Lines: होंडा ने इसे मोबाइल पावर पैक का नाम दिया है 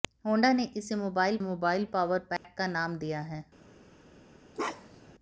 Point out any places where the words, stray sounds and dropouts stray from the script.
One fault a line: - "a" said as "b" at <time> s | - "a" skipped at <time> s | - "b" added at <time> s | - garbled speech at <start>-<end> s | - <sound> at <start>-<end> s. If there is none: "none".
- "मोबाइल" added at 1.4 s
- dropout at 2.4-2.4 s
- bark at 4.5-5.1 s